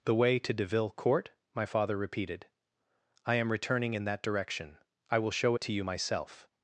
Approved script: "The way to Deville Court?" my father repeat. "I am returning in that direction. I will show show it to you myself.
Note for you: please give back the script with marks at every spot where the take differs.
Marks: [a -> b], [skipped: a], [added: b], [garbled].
"The way to Deville Court?" my father [repeat. -> repeated] "I am returning in that direction. I will show [skipped: show] it to you myself.